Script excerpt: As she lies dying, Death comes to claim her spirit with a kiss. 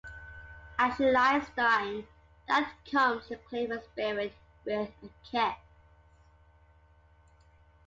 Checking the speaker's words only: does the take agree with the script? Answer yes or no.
yes